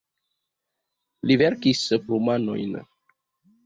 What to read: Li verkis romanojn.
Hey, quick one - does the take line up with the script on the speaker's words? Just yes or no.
yes